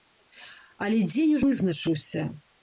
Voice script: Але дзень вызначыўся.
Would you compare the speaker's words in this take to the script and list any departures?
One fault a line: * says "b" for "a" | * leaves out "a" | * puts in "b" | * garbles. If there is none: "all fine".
all fine